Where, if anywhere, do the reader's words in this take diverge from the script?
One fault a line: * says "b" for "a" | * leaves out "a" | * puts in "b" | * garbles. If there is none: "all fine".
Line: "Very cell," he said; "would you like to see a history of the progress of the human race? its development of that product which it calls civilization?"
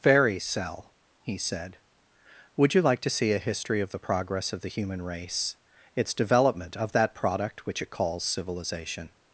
all fine